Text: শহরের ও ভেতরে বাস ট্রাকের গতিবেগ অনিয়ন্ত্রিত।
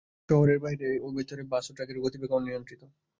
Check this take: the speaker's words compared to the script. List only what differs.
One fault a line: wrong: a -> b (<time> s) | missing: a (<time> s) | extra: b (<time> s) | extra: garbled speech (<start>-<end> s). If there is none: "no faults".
extra: বাইরে (0.6 s)
extra: ও (1.7 s)